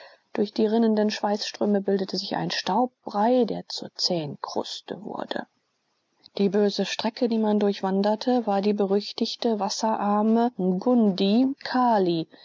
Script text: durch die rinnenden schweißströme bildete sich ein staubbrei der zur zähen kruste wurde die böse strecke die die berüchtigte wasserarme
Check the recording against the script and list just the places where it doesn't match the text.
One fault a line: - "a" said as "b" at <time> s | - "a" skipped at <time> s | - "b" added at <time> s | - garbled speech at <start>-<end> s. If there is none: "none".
- "man durchwanderte war" added at 7.4 s